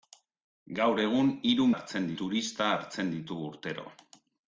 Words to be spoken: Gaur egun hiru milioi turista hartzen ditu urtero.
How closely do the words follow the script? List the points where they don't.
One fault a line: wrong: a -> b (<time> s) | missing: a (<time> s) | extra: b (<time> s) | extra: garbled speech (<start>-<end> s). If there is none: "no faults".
wrong: milioi -> hartzen (1.7 s)